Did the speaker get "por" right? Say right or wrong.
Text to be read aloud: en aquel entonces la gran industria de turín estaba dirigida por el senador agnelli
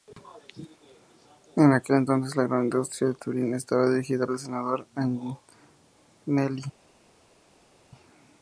wrong